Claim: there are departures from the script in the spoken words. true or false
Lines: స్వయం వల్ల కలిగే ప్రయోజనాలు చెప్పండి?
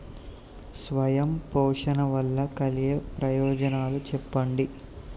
true